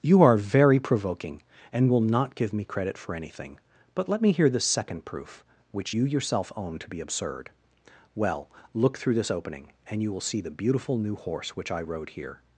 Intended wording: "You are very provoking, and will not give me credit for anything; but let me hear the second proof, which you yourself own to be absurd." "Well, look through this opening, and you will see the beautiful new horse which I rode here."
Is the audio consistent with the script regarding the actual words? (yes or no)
yes